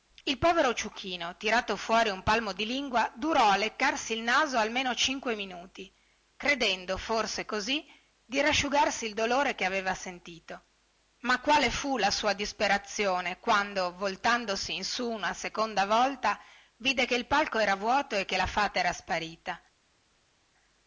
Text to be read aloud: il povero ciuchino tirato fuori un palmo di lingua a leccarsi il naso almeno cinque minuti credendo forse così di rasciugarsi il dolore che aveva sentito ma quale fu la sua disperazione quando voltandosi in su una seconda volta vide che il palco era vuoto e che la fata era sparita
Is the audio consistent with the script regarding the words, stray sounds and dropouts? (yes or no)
no